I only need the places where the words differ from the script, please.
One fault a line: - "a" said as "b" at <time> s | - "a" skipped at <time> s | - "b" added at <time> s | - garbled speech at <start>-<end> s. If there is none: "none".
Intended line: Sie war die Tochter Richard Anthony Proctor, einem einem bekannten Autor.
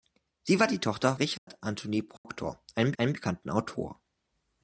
none